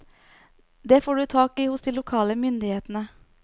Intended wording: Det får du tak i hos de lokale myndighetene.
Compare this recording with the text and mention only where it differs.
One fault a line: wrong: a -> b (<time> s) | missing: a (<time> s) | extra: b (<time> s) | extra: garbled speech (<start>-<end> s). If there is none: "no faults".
no faults